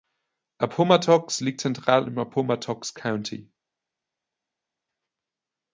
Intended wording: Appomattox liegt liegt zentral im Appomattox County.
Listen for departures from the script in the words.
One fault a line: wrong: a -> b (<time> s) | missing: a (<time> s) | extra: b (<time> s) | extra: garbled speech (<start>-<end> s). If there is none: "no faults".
missing: liegt (1.6 s)